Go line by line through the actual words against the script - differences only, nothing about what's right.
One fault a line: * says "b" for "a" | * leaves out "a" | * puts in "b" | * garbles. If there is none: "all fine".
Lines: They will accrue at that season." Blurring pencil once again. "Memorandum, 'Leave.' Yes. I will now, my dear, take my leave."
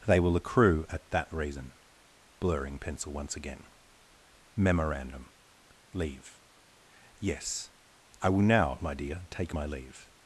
* says "reason" for "season"